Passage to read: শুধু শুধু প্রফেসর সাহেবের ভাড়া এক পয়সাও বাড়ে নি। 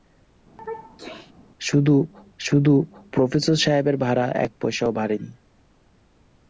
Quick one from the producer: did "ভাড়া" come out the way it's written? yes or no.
yes